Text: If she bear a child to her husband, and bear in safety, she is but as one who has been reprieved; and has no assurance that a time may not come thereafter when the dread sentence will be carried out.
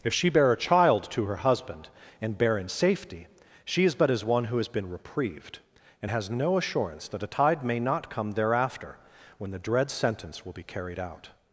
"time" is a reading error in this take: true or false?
true